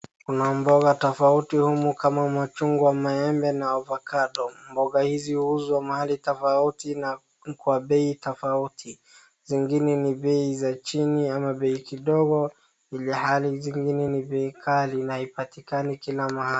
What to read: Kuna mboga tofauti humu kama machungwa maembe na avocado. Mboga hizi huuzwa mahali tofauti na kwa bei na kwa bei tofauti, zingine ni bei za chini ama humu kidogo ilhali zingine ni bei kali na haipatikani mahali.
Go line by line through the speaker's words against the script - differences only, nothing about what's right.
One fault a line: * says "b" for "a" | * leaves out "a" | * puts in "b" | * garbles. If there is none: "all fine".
* leaves out "na kwa bei"
* says "bei" for "humu"
* puts in "kila"